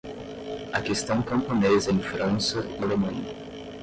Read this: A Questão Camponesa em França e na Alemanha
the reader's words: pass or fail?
fail